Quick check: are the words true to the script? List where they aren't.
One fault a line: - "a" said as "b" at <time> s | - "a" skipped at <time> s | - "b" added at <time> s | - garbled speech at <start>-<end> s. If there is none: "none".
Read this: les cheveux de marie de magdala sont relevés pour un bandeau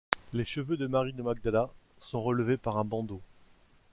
- "pour" said as "par" at 2.6 s